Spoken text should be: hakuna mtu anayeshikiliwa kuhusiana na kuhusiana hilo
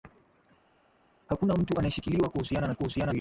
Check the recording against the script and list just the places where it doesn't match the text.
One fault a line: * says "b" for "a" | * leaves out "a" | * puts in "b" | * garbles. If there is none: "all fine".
all fine